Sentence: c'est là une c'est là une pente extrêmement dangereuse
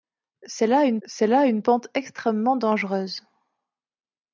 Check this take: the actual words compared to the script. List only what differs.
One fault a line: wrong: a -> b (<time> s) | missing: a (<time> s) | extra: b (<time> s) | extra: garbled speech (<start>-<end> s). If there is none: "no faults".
no faults